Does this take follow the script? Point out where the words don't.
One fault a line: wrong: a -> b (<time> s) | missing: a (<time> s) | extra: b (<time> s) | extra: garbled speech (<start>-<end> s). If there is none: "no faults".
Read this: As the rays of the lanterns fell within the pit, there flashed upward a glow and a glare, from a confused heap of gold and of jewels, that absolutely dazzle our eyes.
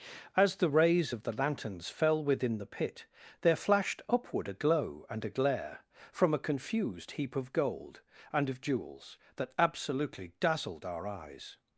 wrong: dazzle -> dazzled (10.4 s)